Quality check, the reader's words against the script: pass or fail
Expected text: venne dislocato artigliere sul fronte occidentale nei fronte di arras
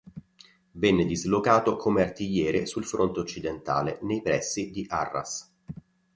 fail